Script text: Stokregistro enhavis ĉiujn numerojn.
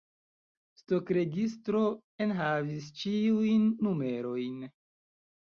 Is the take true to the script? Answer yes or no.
yes